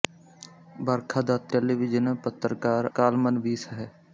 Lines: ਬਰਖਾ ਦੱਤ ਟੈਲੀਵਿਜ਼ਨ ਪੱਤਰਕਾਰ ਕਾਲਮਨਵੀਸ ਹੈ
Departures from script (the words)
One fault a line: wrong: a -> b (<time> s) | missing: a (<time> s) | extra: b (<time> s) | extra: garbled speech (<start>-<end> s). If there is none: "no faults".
no faults